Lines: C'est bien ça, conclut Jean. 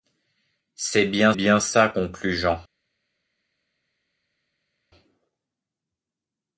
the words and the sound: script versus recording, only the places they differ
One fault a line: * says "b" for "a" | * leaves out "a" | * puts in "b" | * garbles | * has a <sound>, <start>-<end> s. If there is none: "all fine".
* puts in "bien"